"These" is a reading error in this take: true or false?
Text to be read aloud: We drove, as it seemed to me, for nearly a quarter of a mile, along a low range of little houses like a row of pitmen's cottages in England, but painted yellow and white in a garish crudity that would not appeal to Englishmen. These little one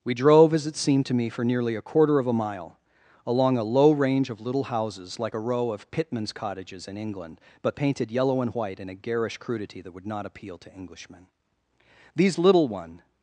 false